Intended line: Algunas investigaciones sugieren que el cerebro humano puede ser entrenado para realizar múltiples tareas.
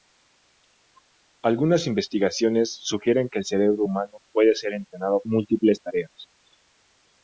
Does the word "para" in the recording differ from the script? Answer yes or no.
yes